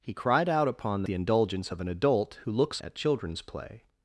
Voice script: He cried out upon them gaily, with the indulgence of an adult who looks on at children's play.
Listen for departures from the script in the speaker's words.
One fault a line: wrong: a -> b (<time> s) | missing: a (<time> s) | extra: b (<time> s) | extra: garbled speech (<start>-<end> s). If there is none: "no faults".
missing: them gaily with (1.0 s)
missing: on (2.8 s)